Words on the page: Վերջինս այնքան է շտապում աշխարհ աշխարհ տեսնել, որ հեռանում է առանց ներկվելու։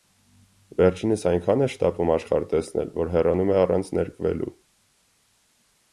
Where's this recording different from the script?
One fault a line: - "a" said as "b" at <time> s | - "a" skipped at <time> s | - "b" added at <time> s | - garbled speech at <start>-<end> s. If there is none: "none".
- "աշխարհ" skipped at 2.5 s